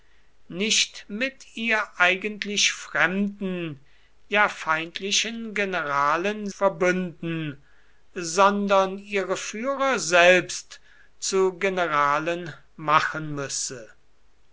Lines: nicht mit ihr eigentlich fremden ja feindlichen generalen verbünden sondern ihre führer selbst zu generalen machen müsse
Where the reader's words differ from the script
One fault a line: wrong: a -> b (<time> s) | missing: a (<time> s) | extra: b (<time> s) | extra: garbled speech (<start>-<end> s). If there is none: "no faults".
no faults